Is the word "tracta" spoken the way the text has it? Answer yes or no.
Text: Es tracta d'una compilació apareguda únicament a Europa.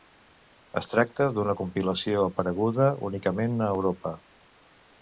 yes